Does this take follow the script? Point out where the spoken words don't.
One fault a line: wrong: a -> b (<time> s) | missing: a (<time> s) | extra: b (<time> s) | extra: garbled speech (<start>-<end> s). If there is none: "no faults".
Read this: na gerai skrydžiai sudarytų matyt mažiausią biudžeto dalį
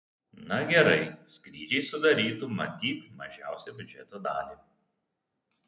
no faults